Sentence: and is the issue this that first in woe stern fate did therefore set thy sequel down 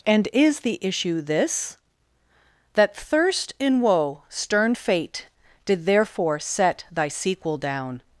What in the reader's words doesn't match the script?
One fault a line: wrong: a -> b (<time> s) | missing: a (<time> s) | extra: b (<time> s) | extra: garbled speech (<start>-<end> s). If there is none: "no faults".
wrong: first -> thirst (2.9 s)